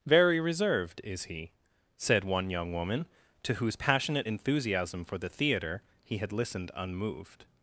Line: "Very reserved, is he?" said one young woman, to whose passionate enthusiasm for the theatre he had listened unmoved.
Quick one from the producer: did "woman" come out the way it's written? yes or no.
yes